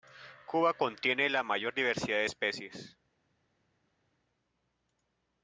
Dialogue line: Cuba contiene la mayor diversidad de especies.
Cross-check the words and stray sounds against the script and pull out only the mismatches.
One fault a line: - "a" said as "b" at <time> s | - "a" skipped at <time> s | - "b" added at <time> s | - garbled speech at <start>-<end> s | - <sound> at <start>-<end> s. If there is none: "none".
none